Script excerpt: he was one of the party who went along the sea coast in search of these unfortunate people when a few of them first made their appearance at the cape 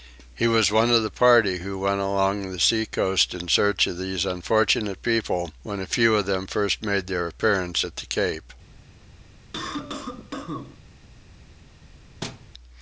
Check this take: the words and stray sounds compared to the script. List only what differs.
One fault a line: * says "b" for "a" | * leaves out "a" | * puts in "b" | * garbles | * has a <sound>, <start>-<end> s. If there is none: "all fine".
* has a cough, 9.5-10.8 s
* has a thud, 12.2-12.5 s